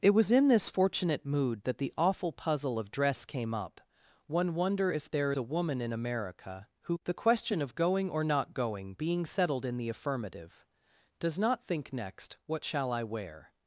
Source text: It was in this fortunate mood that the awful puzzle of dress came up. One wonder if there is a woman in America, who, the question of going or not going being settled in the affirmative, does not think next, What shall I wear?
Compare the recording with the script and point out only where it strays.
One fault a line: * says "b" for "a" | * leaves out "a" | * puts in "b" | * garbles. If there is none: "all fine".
* leaves out "is"